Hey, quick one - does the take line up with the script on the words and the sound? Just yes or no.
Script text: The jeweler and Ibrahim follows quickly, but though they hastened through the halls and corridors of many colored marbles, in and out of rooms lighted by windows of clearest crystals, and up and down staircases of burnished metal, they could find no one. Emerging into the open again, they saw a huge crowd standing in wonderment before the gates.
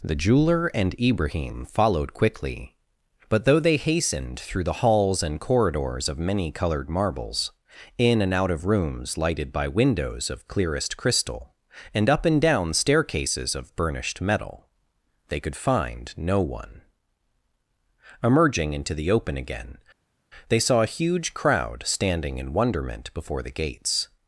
no